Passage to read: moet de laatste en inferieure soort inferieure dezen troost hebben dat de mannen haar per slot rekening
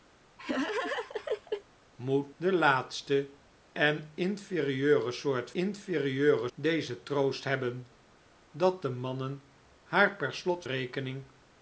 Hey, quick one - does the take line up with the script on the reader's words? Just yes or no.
yes